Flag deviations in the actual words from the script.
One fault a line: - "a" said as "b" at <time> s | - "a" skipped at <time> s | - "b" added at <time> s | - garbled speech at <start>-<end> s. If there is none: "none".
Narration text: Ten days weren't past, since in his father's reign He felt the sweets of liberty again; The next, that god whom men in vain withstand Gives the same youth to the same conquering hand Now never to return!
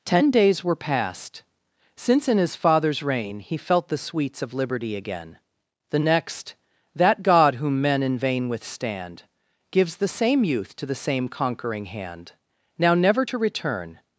- "weren't" said as "were" at 0.6 s